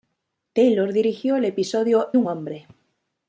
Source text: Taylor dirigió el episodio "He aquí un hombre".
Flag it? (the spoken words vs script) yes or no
yes